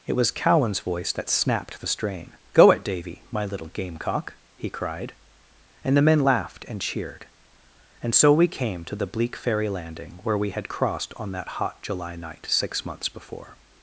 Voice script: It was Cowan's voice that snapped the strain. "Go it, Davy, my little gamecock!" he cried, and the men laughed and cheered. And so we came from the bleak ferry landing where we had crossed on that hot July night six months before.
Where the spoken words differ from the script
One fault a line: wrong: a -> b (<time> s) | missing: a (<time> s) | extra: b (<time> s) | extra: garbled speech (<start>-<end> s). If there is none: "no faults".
wrong: from -> to (8.8 s)